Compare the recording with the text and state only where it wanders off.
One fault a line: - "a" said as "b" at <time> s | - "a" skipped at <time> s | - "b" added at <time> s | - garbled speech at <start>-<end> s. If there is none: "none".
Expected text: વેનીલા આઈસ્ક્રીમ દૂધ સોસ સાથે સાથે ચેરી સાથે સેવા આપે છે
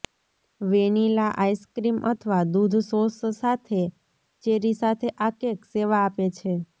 - "અથવા" added at 2.1 s
- "ચેરી" added at 4.4 s
- "ચેરી સાથે" said as "આ કેક" at 5.2 s